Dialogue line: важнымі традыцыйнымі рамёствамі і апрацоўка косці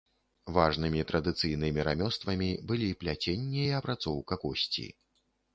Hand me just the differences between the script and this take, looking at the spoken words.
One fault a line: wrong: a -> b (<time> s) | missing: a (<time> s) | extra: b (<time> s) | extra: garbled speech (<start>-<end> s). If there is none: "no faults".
extra: былі пляценне (2.7 s)